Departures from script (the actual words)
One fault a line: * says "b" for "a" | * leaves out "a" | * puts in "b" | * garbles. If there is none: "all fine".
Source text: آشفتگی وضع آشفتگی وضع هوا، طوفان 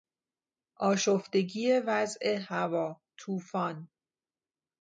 * leaves out "آشفتگی وضع"